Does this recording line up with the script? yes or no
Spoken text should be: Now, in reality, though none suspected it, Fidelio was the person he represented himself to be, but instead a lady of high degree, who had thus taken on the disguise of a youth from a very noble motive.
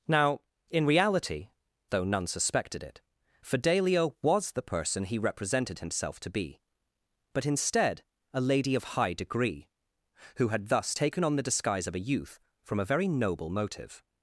yes